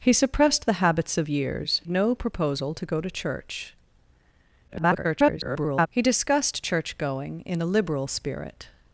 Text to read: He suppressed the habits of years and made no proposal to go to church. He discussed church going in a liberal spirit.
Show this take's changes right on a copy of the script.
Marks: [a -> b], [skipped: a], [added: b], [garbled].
He suppressed the habits of years [skipped: and made] no proposal to go to church. [garbled] He discussed church going in a liberal spirit.